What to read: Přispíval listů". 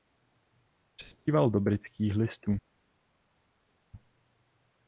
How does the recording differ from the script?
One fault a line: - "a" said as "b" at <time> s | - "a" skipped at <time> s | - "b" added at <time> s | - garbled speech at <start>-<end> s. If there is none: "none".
- "do Britských" added at 1.5 s